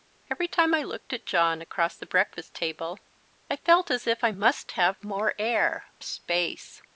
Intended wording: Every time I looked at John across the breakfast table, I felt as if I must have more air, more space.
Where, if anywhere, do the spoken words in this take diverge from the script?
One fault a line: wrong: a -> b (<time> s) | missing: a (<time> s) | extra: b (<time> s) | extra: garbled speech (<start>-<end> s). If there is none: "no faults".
missing: more (5.9 s)